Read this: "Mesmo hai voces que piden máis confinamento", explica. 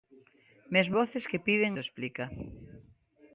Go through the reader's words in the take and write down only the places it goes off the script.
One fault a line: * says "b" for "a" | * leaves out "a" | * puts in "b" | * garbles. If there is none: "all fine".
* leaves out "hai"
* leaves out "máis confinamento"